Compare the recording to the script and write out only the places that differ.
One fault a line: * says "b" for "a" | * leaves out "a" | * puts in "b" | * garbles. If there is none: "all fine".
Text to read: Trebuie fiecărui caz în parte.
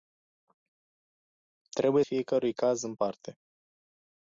all fine